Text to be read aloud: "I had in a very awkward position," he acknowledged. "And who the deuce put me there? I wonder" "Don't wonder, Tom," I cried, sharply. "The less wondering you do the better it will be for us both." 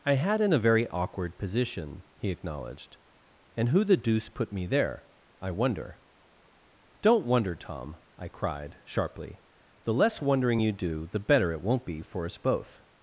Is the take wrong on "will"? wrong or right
wrong